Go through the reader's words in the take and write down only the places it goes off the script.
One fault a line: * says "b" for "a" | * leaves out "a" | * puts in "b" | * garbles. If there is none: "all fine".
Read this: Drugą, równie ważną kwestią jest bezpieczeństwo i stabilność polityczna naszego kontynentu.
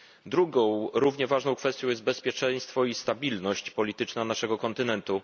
all fine